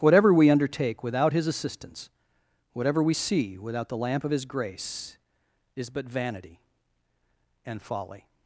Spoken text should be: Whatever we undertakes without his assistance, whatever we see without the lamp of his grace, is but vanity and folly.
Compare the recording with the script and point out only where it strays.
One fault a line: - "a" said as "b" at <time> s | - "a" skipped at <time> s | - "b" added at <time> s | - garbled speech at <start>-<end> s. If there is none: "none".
- "undertakes" said as "undertake" at 0.5 s